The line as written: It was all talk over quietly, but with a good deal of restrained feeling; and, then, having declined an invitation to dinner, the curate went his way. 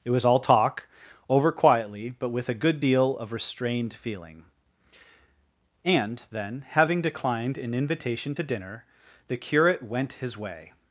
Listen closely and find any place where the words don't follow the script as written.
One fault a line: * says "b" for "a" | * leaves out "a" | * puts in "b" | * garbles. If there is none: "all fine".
all fine